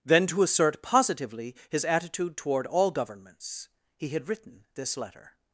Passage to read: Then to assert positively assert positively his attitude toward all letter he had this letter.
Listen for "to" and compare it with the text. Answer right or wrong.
right